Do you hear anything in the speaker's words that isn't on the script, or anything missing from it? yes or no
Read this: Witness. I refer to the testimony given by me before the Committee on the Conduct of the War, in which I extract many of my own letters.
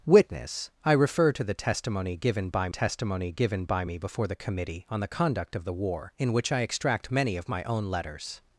yes